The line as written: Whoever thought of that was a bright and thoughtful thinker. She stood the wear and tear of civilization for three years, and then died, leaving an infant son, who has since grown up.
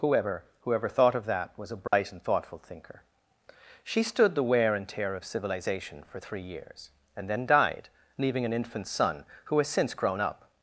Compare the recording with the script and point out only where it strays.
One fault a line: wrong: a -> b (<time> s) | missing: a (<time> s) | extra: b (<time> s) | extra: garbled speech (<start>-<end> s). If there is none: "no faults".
extra: whoever (0.6 s)